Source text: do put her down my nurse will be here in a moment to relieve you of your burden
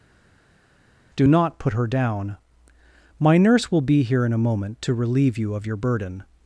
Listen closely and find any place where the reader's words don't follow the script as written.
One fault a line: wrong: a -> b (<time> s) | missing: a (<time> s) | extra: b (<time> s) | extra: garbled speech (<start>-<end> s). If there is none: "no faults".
extra: not (1.3 s)